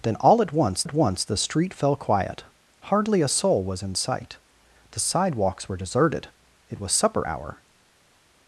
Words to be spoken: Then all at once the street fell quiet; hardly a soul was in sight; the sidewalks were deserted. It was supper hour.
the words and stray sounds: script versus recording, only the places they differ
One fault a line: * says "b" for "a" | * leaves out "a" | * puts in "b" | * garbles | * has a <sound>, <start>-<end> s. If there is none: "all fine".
* puts in "at once"